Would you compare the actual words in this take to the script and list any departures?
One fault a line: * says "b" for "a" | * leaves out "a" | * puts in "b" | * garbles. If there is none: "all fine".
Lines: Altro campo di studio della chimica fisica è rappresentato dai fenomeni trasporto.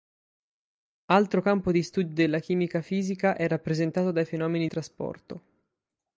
all fine